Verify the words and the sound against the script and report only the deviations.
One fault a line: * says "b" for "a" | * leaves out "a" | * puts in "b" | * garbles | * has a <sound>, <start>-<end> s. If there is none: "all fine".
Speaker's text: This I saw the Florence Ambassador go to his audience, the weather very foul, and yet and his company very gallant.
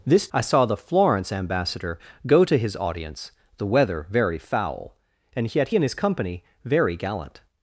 all fine